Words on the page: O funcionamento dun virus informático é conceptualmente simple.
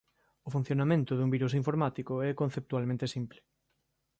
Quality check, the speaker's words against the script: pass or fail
pass